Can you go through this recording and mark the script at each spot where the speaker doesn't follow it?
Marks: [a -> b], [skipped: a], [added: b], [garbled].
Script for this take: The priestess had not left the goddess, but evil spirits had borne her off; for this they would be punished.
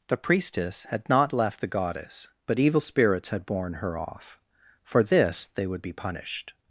The priestess had not left the goddess, but evil spirits had borne her off; for this they would be punished.